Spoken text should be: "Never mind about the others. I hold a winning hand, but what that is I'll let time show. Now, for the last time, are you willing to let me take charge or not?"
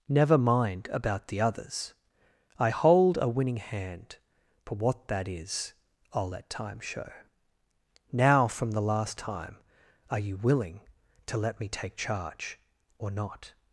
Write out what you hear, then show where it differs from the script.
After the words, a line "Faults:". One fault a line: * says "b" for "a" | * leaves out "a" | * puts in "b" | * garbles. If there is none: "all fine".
"Never mind about the others. I hold a winning hand, but what that is I'll let time show. Now, from the last time, are you willing to let me take charge or not?"
Faults:
* says "from" for "for"